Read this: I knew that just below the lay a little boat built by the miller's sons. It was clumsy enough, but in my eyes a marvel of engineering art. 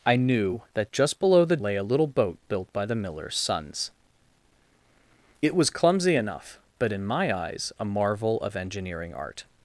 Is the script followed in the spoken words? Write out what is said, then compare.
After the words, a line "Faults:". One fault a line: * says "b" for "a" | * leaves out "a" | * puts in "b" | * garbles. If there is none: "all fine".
I knew that just below the lay a little boat built by the miller's sons. It was clumsy enough, but in my eyes a marvel of engineering art.
Faults:
all fine